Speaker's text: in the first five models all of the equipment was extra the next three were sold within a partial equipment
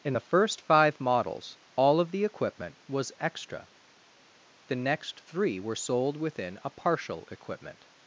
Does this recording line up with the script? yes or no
yes